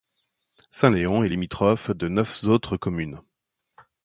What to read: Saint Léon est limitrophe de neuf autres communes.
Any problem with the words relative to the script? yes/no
no